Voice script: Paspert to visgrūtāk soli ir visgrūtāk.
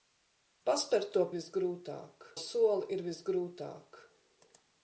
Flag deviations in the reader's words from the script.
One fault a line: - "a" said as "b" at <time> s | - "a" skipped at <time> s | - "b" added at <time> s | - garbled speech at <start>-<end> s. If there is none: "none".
none